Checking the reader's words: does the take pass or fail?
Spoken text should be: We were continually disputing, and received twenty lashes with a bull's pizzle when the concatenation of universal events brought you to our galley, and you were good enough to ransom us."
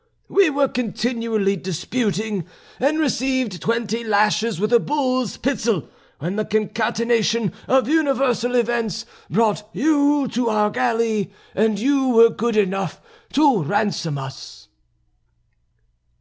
pass